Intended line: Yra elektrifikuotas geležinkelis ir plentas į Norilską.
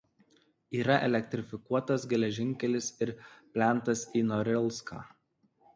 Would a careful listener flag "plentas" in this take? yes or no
no